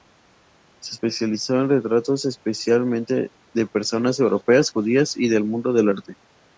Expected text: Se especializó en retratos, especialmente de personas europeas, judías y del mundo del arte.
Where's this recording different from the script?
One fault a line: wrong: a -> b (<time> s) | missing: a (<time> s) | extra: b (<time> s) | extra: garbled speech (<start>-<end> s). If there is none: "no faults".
no faults